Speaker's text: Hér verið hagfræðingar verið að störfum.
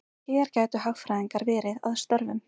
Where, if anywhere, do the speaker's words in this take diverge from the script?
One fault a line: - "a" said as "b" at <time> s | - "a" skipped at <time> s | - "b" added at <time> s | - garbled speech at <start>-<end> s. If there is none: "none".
- "verið" said as "gætu" at 0.6 s